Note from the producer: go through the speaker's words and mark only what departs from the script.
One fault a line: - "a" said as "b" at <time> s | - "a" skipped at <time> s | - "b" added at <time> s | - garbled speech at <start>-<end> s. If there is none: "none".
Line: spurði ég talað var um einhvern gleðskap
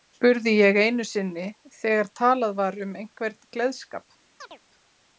- "einu sinni þegar" added at 0.8 s